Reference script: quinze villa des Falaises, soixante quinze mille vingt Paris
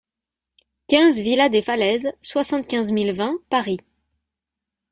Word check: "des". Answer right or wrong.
right